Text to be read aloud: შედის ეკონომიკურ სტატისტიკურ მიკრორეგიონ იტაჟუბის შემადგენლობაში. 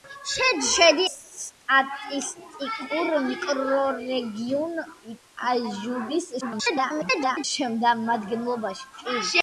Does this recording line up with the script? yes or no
no